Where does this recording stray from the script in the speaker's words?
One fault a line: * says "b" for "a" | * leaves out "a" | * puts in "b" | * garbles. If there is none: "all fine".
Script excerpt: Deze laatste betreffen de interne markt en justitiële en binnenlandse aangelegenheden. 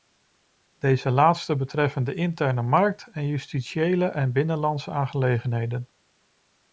all fine